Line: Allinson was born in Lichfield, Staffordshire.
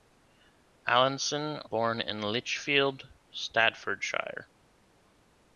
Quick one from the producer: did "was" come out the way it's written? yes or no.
no